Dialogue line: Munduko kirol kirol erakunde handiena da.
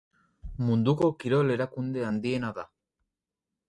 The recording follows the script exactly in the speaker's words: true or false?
false